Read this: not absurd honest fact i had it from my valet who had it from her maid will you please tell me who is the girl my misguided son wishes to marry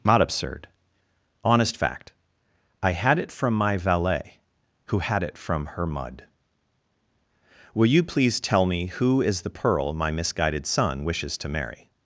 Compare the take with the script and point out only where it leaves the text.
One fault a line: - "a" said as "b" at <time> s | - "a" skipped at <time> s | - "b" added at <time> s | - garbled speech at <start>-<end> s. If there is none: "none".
- "maid" said as "mud" at 5.8 s
- "girl" said as "pearl" at 9.5 s